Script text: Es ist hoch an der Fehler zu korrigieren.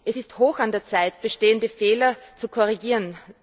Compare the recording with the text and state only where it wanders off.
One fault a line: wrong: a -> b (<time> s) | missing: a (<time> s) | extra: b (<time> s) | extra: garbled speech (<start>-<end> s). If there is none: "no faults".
extra: Zeit bestehende (0.8 s)